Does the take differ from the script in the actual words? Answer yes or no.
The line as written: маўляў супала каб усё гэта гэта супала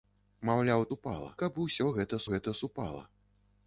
no